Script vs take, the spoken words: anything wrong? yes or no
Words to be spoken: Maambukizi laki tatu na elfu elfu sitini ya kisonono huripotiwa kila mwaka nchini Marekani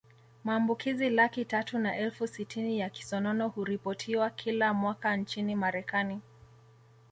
yes